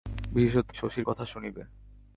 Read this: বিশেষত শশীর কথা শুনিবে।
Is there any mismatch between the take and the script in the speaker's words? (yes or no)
no